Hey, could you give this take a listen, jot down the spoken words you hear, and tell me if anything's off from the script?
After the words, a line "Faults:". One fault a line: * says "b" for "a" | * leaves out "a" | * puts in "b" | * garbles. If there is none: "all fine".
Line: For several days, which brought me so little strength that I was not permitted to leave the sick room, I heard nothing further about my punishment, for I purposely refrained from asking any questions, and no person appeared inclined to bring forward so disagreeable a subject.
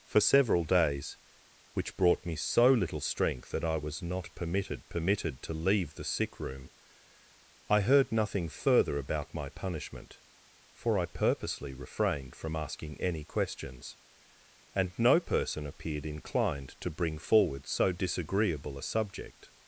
For several days, which brought me so little strength that I was not permitted permitted to leave the sick room, I heard nothing further about my punishment, for I purposely refrained from asking any questions, and no person appeared inclined to bring forward so disagreeable a subject.
Faults:
* puts in "permitted"